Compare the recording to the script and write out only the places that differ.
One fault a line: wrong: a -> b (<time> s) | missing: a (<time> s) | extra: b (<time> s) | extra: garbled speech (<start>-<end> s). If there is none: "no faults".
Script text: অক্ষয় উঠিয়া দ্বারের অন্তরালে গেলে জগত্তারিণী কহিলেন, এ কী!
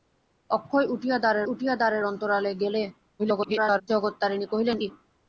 extra: উঠিয়া দ্বারের (1.5 s)
extra: garbled speech (3.2-3.8 s)
missing: এ (4.8 s)